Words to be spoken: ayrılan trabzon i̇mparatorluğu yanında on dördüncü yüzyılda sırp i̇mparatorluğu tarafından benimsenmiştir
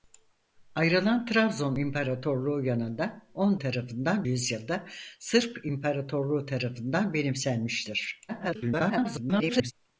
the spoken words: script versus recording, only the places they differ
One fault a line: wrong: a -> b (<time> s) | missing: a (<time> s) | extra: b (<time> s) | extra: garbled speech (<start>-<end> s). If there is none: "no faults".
wrong: dördüncü -> tarafından (3.6 s)
extra: garbled speech (8.3-9.7 s)